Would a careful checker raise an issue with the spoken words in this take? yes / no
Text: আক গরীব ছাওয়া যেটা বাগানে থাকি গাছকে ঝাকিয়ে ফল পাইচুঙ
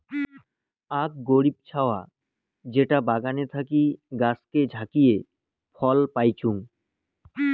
no